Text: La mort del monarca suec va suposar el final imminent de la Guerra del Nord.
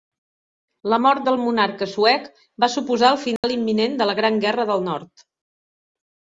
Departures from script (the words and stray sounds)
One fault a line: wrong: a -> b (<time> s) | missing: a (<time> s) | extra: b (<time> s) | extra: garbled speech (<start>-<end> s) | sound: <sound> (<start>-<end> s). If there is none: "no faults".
sound: dropout (3.4-3.4 s)
extra: Gran (4.2 s)